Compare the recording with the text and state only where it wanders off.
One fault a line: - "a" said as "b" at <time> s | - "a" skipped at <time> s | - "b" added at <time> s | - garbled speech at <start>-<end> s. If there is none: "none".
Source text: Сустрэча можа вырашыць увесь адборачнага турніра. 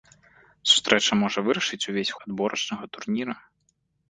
none